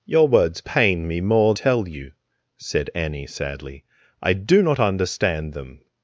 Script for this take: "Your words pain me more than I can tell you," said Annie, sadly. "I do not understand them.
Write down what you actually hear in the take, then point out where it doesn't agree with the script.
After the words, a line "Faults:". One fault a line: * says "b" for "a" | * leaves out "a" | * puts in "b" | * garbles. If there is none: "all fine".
"Your words pain me more tell you," said Annie, sadly. "I do not understand them.
Faults:
* leaves out "than I can"